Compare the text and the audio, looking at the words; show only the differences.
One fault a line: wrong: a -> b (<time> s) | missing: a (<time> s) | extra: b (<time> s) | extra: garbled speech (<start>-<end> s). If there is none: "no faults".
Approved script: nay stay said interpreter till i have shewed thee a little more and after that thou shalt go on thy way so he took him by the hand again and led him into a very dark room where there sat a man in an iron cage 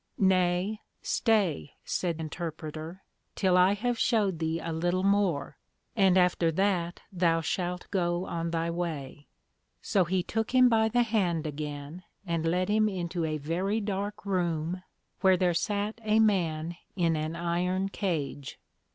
no faults